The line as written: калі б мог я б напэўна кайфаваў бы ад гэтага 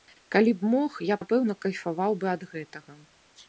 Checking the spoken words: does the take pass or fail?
fail